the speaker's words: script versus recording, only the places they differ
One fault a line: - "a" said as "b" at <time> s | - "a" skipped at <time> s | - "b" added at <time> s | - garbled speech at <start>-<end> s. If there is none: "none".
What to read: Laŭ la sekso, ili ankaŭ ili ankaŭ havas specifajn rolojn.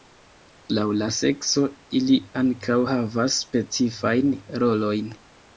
- "ili ankaŭ" skipped at 2.8 s